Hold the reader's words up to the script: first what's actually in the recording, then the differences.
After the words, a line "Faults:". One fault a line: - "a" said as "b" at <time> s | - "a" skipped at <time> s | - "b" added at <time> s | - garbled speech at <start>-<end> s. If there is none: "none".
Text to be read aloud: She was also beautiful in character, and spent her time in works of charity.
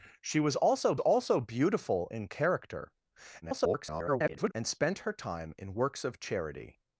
She was also also beautiful in character, [garbled] and spent her time in works of charity.
Faults:
- "also" added at 1.0 s
- garbled speech at 3.4-4.5 s